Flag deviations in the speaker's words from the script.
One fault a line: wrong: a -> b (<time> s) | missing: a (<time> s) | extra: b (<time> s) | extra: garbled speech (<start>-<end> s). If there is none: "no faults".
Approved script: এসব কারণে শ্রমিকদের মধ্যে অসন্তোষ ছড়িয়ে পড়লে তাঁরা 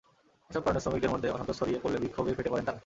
extra: বিক্ষোভে ফেটে পড়েন (2.0 s)